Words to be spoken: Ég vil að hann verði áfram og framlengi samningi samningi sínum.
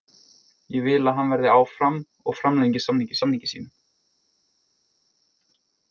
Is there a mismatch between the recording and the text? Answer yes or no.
no